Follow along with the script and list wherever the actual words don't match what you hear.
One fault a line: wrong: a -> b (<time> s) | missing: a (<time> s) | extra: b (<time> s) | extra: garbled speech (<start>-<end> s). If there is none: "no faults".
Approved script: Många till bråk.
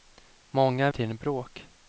no faults